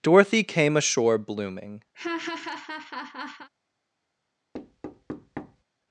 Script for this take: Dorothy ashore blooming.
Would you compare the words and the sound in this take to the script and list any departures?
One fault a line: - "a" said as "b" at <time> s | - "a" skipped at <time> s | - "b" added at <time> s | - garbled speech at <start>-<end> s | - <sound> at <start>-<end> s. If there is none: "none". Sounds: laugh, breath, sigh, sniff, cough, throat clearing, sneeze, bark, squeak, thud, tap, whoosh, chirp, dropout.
- "came" added at 0.4 s
- laugh at 1.9-3.5 s
- thud at 4.5-5.6 s